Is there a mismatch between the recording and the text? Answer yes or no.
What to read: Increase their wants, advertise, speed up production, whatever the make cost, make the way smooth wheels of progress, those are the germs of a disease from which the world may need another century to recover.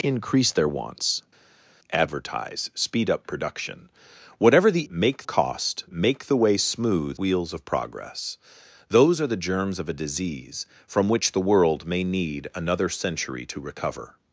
no